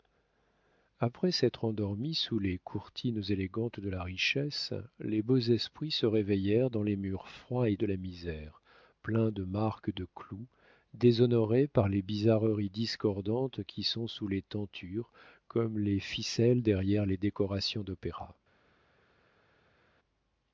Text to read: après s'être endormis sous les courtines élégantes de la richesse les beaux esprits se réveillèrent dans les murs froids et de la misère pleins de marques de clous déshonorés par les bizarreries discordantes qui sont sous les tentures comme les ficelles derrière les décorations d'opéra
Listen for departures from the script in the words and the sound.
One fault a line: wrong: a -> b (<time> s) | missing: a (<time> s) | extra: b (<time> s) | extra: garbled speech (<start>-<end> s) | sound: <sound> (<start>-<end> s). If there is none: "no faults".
no faults